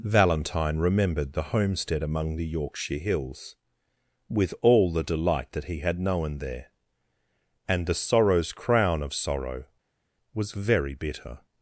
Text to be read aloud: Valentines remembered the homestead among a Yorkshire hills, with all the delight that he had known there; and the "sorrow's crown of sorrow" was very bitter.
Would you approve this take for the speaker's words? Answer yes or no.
no